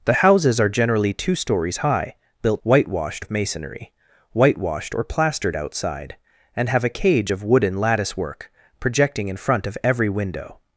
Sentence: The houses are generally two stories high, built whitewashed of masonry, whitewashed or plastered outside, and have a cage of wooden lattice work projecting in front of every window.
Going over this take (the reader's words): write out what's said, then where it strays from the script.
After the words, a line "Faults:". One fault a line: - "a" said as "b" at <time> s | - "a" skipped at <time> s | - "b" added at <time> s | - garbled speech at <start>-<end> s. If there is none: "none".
The houses are generally two stories high, built whitewashed of masonry, whitewashed or plastered outside, and have a cage of wooden lattice work projecting in front of every window.
Faults:
none